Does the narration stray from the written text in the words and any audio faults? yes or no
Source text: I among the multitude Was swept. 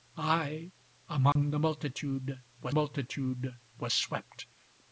yes